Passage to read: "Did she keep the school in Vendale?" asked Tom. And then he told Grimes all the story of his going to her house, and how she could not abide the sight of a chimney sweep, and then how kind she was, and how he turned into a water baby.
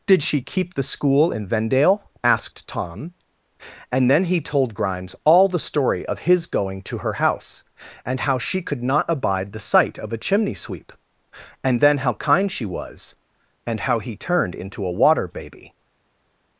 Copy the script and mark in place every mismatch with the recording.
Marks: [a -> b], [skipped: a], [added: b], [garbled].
"Did she keep the school in Vendale?" asked Tom. And then he told Grimes all the story of his going to her house, and how she could not abide the sight of a chimney sweep, and then how kind she was, and how he turned into a water baby.